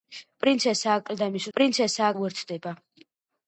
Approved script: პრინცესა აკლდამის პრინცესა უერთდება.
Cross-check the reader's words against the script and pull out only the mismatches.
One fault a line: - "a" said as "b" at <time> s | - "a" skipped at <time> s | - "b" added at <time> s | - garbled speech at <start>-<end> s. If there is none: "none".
none